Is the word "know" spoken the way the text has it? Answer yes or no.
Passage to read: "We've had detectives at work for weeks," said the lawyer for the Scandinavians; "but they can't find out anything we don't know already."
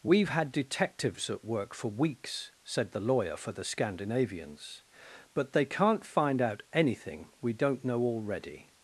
yes